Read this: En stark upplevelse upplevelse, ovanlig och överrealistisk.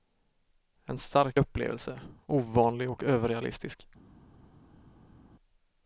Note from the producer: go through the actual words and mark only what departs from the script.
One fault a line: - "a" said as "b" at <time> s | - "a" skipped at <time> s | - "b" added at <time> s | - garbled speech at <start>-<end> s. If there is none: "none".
- "upplevelse" skipped at 2.0 s